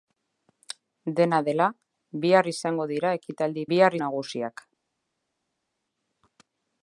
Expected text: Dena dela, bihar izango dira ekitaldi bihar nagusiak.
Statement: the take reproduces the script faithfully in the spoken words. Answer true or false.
true